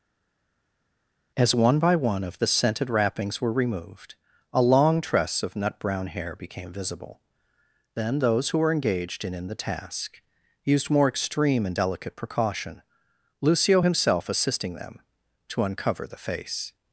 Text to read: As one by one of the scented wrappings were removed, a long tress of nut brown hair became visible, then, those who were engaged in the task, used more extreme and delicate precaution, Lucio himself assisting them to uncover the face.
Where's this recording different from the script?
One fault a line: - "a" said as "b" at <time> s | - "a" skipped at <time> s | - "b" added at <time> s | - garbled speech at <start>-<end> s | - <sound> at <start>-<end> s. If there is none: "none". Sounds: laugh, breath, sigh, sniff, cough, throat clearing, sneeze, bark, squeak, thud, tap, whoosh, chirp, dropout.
- "in" added at 9.3 s